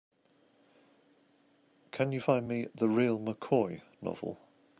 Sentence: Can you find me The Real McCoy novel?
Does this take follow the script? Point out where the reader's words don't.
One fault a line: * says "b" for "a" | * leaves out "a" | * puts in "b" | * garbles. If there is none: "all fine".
all fine